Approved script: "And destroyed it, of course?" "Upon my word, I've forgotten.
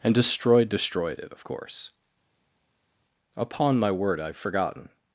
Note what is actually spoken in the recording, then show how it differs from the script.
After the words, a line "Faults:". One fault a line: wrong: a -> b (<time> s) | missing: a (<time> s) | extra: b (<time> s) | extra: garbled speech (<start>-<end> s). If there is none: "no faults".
"And destroyed destroyed it, of course?" "Upon my word, I've forgotten.
Faults:
extra: destroyed (0.7 s)